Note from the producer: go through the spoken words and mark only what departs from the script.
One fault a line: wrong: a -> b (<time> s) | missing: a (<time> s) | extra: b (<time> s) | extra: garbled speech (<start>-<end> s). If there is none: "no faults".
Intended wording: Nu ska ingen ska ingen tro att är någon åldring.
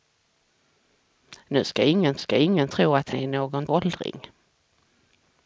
no faults